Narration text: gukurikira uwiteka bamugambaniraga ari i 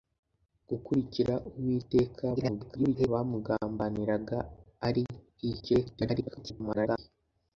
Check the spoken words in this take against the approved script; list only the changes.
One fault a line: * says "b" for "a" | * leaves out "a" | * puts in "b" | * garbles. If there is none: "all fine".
* garbles
* garbles